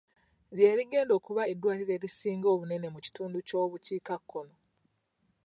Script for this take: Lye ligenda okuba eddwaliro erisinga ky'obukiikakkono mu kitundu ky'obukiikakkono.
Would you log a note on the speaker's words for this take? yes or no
yes